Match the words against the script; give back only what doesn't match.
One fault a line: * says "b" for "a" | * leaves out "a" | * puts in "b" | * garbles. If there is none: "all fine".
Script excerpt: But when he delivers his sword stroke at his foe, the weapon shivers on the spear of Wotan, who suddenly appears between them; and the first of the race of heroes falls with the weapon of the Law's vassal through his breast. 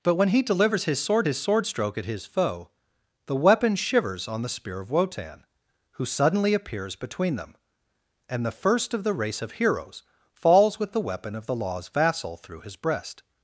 * puts in "his sword"